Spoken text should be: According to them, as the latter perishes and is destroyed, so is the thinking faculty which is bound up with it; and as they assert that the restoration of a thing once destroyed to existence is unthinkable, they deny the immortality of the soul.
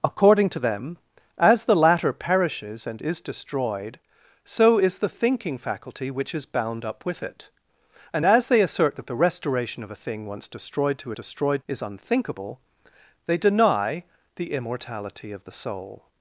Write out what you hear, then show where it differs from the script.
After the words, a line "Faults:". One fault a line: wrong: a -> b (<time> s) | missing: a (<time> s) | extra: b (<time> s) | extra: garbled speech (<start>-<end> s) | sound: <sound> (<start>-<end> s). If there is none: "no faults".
According to them, as the latter perishes and is destroyed, so is the thinking faculty which is bound up with it; and as they assert that the restoration of a thing once destroyed to destroyed is unthinkable, they deny the immortality of the soul.
Faults:
wrong: existence -> destroyed (11.1 s)